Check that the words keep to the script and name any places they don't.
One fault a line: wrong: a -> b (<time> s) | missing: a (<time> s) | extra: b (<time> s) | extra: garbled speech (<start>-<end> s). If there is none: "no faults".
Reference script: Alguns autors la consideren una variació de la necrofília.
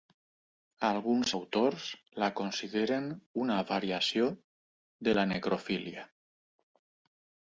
no faults